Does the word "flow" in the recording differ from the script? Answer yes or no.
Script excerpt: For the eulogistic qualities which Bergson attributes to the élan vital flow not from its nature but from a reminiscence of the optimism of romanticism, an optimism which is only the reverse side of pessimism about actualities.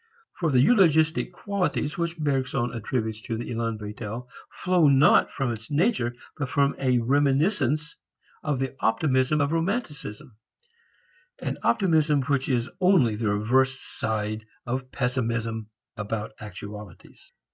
no